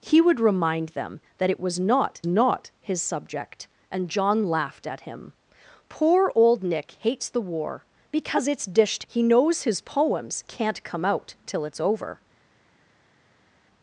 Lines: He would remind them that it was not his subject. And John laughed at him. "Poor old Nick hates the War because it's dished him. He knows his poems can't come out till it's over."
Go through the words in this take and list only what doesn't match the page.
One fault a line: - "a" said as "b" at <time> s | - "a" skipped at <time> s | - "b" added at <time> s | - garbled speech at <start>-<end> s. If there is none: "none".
- "not" added at 2.3 s
- "him" skipped at 9.0 s